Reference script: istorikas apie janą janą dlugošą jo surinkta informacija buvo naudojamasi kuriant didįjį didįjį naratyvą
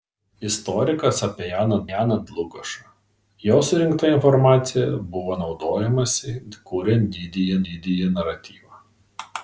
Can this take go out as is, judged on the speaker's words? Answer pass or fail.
pass